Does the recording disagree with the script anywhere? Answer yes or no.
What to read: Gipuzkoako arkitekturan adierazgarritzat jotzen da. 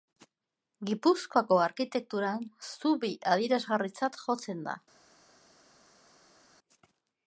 yes